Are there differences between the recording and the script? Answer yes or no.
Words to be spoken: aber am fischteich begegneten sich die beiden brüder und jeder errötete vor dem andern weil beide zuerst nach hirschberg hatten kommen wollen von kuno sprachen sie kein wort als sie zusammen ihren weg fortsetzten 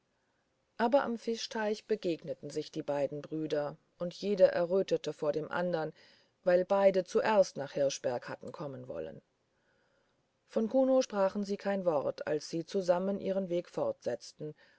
no